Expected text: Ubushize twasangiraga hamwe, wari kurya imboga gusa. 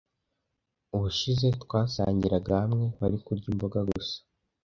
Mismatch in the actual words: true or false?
false